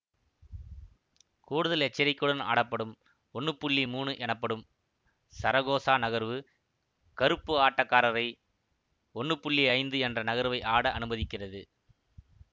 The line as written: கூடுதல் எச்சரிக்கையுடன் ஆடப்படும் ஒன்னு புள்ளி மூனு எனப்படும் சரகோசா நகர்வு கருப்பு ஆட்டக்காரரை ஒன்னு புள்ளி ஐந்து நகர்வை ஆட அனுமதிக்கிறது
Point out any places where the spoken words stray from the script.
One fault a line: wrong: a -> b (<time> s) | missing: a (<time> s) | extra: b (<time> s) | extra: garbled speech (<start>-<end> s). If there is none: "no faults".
extra: என்ற (10.0 s)